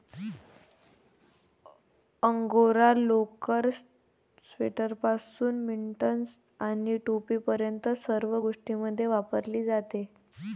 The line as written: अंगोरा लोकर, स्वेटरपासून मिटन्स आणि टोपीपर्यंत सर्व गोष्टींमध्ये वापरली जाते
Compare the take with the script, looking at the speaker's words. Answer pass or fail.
pass